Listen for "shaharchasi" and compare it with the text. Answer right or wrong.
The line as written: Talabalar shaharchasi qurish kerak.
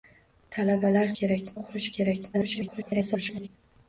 wrong